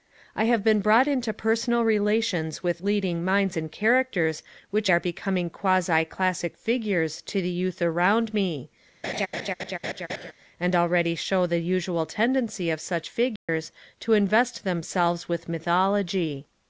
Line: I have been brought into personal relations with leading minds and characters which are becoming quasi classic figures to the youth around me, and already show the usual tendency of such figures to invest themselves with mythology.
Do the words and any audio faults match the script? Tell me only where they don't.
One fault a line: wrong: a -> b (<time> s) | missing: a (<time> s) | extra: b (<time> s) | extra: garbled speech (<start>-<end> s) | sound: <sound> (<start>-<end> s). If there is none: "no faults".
sound: laugh (9.0-10.3 s)
sound: dropout (13.4-13.5 s)